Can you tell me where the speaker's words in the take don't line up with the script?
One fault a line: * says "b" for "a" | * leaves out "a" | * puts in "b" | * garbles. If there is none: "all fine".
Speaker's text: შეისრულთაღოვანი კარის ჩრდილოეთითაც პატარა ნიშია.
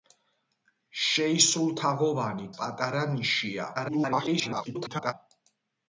* leaves out "კარის ჩრდილოეთითაც"
* garbles